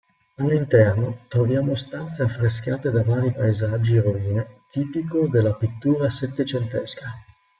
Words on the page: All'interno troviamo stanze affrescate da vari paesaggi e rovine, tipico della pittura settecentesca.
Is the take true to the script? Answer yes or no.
yes